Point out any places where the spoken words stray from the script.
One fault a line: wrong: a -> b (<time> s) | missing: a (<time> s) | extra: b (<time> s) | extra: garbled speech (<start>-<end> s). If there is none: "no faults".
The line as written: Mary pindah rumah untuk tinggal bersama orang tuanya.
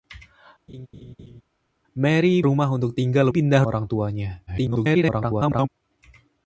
missing: pindah (2.4 s)
wrong: bersama -> pindah (3.3 s)
extra: garbled speech (4.5-5.7 s)